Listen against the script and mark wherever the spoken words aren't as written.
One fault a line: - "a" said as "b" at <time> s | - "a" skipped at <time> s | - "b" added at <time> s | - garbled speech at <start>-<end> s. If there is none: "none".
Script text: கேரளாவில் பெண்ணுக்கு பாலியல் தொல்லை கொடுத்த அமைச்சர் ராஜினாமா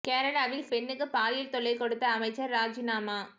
none